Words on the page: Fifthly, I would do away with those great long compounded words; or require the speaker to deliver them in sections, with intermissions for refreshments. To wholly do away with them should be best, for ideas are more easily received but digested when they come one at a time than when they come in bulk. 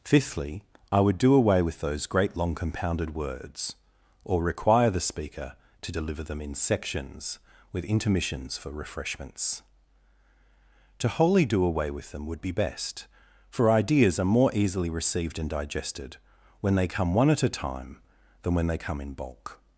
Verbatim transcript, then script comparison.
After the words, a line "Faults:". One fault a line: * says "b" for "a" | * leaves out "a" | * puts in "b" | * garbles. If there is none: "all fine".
Fifthly, I would do away with those great long compounded words; or require the speaker to deliver them in sections, with intermissions for refreshments. To wholly do away with them would be best, for ideas are more easily received and digested when they come one at a time than when they come in bulk.
Faults:
* says "would" for "should"
* says "and" for "but"